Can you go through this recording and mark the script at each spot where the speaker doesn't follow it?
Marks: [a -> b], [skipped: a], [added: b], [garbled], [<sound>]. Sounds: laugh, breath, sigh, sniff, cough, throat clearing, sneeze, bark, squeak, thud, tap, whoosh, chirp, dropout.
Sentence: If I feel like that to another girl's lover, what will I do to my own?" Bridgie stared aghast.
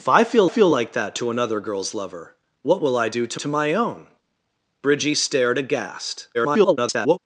If I feel [added: feel] like that to another girl's lover, what will I do to [added: to] my own?" Bridgie stared aghast. [garbled]